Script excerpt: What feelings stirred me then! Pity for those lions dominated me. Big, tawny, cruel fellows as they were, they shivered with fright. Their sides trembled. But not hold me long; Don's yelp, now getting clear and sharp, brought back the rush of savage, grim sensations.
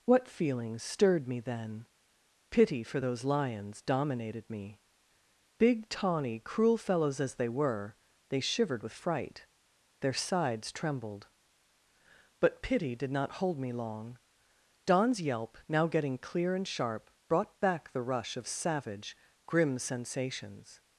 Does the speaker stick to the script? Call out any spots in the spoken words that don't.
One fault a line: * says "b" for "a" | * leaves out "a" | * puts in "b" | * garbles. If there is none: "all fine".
* puts in "pity did"